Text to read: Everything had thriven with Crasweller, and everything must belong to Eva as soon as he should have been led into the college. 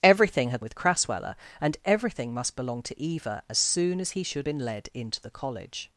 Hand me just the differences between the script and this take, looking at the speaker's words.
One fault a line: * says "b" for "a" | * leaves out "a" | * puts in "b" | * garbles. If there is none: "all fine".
* leaves out "thriven"
* leaves out "have"